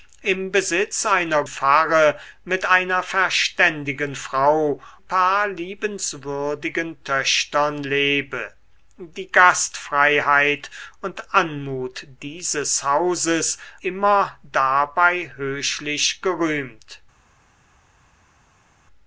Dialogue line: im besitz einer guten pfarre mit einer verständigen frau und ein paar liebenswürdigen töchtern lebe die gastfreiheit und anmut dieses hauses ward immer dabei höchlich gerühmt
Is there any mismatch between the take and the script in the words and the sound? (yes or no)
yes